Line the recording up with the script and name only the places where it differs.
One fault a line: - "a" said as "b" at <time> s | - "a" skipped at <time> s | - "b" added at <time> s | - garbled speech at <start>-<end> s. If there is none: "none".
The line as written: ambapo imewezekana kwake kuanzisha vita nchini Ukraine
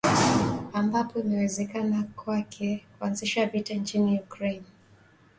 none